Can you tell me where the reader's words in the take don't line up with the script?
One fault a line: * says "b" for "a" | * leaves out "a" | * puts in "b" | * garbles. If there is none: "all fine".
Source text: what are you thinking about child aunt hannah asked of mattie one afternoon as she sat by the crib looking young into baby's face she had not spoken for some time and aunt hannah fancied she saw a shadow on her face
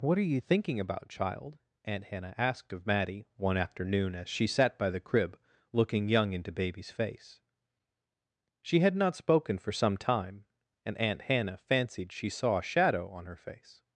all fine